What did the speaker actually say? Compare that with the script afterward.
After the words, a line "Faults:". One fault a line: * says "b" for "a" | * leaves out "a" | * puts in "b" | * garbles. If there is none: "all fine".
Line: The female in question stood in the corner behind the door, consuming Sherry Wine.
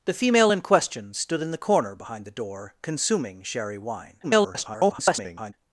The female in question stood in the corner behind the door, consuming Sherry Wine. [garbled]
Faults:
* garbles